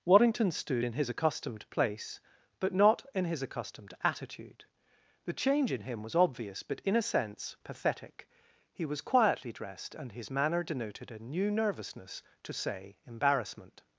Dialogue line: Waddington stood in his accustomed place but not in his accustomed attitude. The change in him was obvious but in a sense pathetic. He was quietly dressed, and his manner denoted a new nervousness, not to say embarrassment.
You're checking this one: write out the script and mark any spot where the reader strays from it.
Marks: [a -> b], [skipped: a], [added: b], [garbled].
Waddington stood in his accustomed place but not in his accustomed attitude. The change in him was obvious but in a sense pathetic. He was quietly dressed, and his manner denoted a new nervousness, [skipped: not] to say embarrassment.